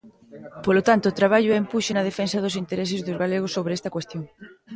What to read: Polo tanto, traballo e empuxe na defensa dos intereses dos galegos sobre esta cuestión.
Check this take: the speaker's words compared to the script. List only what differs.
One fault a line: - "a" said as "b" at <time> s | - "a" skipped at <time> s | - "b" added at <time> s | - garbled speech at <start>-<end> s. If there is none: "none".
none